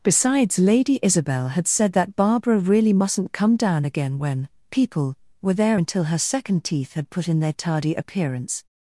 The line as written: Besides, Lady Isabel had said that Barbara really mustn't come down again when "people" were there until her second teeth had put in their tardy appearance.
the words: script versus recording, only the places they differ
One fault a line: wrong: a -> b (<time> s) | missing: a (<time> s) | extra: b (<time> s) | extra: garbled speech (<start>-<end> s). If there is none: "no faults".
no faults